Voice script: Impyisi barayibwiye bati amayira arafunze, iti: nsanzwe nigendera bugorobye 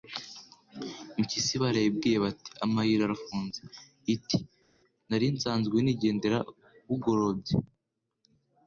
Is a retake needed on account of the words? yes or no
yes